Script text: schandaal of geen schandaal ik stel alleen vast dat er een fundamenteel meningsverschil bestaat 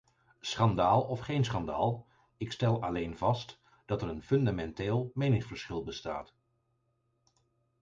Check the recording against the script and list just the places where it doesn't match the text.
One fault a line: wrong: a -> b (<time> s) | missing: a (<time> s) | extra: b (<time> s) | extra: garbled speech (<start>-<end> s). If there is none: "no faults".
no faults